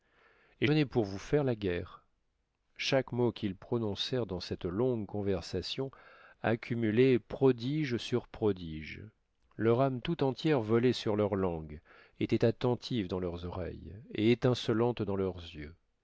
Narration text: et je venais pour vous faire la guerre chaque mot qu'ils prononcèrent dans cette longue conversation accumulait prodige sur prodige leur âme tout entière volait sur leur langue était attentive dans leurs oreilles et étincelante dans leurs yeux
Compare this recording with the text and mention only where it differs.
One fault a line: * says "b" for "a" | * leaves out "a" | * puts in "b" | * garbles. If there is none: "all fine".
* leaves out "je"